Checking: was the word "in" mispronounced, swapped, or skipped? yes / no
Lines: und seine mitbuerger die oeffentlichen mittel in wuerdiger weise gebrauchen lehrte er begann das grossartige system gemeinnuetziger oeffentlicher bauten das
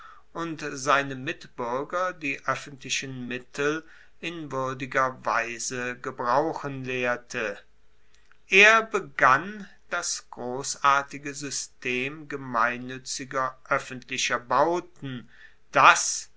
no